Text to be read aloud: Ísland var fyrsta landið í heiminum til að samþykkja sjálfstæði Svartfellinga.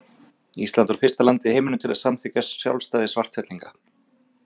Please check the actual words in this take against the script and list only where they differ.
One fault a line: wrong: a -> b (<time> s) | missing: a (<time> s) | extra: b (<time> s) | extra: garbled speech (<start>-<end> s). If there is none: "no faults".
no faults